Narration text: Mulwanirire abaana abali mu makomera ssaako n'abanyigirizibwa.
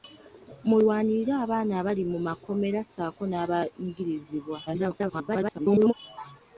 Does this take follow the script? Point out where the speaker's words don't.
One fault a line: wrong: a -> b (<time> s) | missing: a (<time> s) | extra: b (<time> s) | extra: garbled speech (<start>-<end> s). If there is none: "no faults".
extra: garbled speech (4.7-5.9 s)